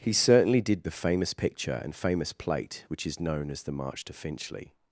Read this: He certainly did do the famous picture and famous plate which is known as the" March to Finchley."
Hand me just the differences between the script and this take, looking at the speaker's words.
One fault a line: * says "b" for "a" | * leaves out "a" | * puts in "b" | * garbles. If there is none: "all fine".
* leaves out "do"